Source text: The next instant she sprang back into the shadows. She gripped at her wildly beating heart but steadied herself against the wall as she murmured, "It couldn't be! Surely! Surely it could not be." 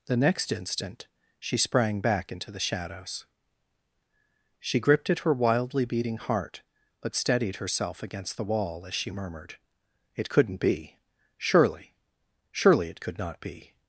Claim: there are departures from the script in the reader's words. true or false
false